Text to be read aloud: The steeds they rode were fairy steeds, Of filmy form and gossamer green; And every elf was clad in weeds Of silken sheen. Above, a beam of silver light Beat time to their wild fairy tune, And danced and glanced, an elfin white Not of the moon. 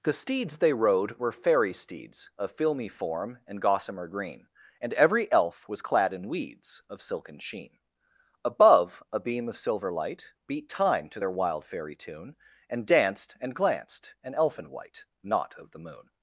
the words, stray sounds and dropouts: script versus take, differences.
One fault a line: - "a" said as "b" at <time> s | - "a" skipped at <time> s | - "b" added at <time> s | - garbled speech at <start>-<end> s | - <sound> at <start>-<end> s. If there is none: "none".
none